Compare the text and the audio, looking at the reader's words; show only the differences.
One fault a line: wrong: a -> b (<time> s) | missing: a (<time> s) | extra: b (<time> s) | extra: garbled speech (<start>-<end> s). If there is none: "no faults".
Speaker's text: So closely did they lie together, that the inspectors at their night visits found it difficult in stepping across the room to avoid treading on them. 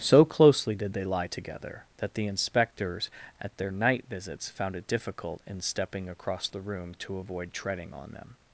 no faults